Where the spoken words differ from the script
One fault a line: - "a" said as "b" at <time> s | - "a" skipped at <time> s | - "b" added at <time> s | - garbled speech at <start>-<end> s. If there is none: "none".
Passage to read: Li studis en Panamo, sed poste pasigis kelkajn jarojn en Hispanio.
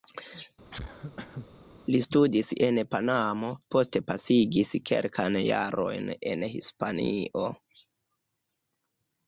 - "sed" skipped at 3.5 s